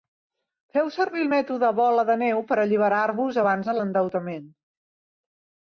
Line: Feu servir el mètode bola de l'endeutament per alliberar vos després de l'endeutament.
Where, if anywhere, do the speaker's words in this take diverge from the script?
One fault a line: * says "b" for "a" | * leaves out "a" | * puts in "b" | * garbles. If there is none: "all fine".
* says "neu" for "l'endeutament"
* says "abans" for "després"